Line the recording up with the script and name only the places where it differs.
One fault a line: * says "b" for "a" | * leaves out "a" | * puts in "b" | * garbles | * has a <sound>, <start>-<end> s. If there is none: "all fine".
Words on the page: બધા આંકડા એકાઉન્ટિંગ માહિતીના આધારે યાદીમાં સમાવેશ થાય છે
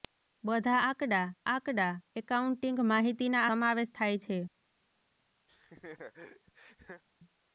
* puts in "આંકડા"
* leaves out "આધારે યાદીમાં"
* has a laugh, 5.5-7.0 s